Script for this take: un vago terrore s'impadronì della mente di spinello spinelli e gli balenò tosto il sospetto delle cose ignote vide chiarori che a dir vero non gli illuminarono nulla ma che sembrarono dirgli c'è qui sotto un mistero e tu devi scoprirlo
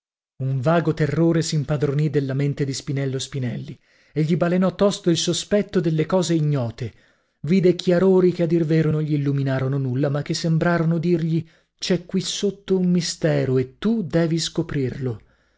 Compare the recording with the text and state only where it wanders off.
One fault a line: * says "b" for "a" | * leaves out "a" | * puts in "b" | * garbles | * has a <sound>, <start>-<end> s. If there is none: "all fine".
all fine